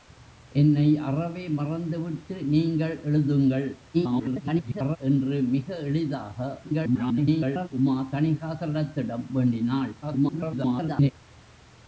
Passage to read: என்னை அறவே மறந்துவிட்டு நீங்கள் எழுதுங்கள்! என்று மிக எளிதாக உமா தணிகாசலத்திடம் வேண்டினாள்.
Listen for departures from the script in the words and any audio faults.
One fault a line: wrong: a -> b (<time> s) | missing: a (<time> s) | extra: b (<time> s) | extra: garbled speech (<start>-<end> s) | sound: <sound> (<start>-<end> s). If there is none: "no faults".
extra: garbled speech (3.9-5.0 s)
extra: garbled speech (6.6-7.7 s)
extra: garbled speech (10.0-11.1 s)